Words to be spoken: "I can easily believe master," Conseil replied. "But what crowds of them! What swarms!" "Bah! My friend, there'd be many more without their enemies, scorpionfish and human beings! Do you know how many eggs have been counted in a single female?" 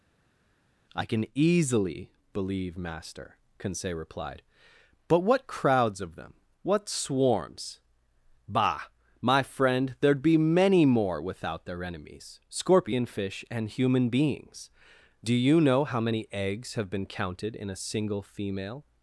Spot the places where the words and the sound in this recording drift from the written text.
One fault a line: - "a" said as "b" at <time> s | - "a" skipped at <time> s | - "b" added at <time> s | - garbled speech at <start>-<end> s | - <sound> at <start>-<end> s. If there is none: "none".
none